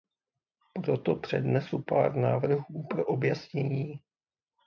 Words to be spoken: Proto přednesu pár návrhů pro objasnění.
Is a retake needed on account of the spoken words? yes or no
no